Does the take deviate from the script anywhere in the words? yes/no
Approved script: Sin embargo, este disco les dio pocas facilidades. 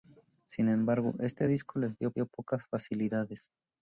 yes